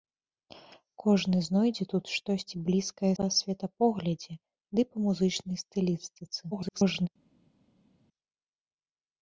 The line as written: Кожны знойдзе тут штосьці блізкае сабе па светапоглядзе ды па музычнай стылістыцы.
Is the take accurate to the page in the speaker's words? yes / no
no